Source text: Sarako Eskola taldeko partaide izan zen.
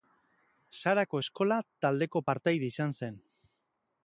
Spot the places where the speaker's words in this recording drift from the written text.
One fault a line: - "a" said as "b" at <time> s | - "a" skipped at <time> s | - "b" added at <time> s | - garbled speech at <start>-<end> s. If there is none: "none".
none